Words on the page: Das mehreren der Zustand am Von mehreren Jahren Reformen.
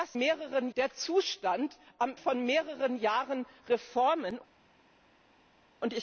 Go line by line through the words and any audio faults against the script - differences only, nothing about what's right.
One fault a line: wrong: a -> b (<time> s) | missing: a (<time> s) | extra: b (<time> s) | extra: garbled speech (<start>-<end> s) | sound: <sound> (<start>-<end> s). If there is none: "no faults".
no faults